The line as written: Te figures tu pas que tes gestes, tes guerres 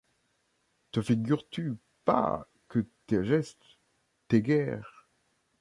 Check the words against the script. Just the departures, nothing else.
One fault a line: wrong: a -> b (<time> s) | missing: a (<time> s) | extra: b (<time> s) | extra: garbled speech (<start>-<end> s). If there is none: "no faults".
no faults